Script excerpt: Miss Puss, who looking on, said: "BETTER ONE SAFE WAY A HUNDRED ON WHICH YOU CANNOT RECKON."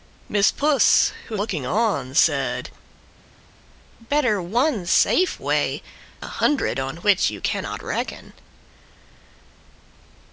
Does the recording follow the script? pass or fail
pass